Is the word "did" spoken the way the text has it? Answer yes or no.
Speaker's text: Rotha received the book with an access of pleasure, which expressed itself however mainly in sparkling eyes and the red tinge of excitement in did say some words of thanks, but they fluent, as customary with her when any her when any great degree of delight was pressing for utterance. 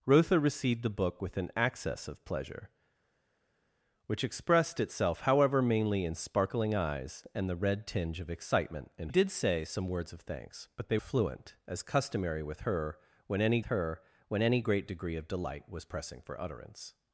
yes